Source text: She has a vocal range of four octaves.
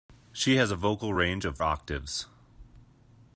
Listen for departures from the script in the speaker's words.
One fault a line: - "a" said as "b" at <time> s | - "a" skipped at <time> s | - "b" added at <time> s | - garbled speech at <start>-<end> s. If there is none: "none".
- "four" skipped at 1.6 s